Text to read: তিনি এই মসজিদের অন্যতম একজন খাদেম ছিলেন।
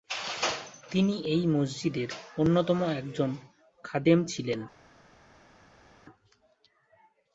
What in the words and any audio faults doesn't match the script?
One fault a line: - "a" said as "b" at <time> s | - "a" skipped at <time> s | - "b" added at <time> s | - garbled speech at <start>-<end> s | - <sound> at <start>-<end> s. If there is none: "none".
none